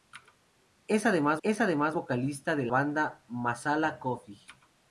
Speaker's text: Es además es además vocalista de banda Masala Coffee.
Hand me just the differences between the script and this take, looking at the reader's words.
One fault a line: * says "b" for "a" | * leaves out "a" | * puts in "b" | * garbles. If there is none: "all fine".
all fine